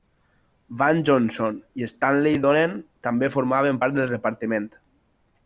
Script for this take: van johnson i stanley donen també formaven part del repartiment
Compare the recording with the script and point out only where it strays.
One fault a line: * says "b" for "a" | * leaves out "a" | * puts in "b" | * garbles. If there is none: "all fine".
all fine